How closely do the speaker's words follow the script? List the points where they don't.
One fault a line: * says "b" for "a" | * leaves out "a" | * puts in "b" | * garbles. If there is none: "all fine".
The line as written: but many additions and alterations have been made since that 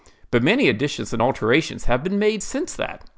all fine